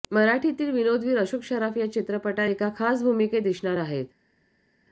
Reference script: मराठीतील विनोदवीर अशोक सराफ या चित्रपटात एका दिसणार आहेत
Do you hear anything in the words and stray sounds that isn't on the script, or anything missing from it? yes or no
yes